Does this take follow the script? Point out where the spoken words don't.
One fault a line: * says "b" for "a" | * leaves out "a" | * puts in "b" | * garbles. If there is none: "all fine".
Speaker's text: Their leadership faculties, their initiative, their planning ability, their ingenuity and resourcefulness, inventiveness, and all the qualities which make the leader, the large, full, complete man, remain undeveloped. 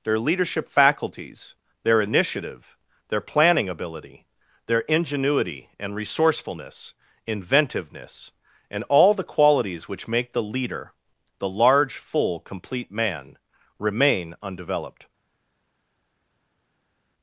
all fine